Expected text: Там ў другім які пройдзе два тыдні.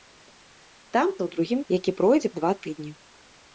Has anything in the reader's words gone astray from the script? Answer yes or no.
no